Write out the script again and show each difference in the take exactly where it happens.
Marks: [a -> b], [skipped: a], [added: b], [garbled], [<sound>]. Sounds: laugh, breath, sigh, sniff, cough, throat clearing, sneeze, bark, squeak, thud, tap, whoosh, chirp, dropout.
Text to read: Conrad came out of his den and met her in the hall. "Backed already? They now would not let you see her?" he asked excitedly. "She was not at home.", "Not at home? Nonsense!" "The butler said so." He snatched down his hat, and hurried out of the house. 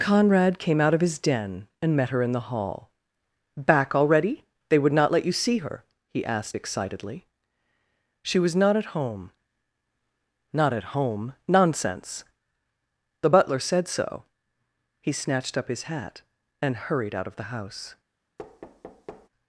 Conrad came out of his den and met her in the hall. ["Backed -> Back] already? They [skipped: now] would not let you see her?" he asked excitedly. "She was not at home.", "Not at home? Nonsense!" "The butler said so." He snatched [down -> up] his hat, and hurried out of the house. [thud]